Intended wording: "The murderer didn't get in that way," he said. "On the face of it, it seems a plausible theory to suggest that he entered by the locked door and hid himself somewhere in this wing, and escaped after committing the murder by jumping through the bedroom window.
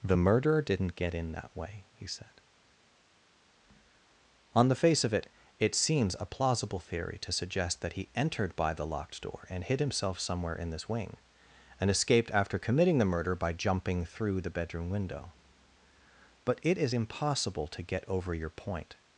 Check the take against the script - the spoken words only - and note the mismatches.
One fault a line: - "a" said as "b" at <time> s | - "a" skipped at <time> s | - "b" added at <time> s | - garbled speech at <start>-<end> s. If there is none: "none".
- "But it is impossible to get over your point" added at 16.4 s